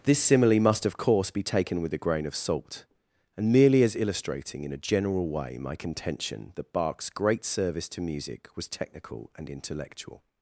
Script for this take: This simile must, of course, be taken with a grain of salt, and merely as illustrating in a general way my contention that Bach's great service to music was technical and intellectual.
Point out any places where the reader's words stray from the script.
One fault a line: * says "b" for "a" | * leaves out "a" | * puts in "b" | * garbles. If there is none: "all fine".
all fine